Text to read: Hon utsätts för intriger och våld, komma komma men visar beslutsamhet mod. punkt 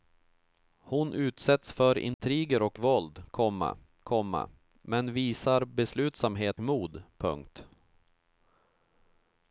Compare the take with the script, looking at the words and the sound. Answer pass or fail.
fail